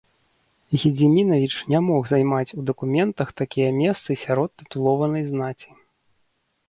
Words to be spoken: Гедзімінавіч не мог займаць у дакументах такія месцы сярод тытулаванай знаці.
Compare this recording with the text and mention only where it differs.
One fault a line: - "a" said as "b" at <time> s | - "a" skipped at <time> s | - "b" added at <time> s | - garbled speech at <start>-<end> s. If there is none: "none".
none